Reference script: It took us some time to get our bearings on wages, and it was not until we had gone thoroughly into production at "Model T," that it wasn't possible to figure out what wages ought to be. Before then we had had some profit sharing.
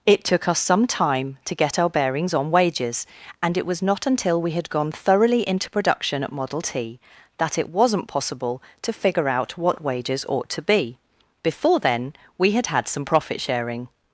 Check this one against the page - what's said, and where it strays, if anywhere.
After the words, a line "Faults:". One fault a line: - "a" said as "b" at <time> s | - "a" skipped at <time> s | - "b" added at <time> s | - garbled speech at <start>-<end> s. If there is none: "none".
It took us some time to get our bearings on wages, and it was not until we had gone thoroughly into production at "Model T," that it wasn't possible to figure out what wages ought to be. Before then we had had some profit sharing.
Faults:
none